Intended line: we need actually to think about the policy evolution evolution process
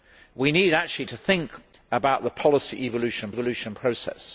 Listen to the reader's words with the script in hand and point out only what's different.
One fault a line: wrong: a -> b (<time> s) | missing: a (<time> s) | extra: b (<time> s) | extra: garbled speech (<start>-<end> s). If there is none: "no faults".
no faults